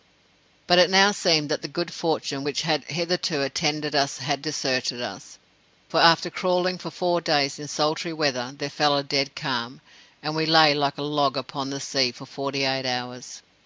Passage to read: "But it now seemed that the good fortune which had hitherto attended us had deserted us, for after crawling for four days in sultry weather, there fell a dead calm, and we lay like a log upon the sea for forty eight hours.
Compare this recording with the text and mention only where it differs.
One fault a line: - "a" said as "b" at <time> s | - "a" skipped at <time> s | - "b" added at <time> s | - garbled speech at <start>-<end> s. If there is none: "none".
none